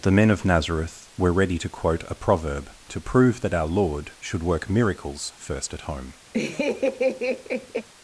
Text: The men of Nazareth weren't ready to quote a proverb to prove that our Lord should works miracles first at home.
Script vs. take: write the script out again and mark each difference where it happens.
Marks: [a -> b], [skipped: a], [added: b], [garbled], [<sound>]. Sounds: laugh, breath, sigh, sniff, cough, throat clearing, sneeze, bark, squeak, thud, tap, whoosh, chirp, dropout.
The men of Nazareth [weren't -> were] ready to quote a proverb to prove that our Lord should [works -> work] miracles first at home. [laugh]